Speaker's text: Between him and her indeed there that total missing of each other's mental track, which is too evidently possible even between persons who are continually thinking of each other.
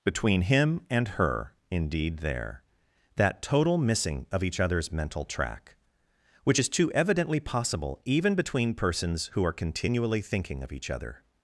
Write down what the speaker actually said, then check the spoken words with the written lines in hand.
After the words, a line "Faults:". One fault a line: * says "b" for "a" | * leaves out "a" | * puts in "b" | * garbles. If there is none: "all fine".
Between him and her indeed there that total missing of each other's mental track, which is too evidently possible even between persons who are continually thinking of each other.
Faults:
all fine